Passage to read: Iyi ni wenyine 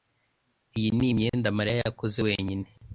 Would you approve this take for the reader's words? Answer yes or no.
no